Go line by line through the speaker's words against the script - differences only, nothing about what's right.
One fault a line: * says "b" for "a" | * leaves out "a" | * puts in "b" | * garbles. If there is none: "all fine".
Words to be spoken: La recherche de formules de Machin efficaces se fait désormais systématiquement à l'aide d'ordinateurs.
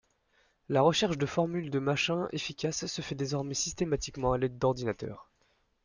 all fine